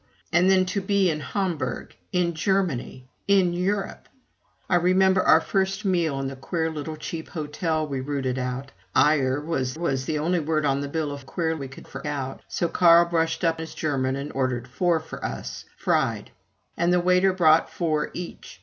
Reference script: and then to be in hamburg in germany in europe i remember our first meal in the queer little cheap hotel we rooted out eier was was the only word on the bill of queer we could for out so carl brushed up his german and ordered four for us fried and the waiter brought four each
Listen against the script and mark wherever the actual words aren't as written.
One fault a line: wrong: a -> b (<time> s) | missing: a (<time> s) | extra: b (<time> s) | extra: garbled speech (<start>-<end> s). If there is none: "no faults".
no faults